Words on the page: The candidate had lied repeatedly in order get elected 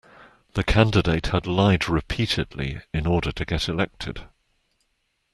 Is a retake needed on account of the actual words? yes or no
yes